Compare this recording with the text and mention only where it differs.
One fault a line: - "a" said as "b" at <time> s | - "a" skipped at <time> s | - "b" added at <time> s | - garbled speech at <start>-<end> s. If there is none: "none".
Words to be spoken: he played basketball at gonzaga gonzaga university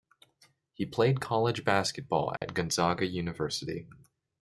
- "college" added at 1.2 s
- "gonzaga" skipped at 3.0 s